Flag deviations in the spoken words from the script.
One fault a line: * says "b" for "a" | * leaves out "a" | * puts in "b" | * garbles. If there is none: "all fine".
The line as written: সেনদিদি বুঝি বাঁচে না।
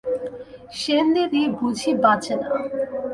all fine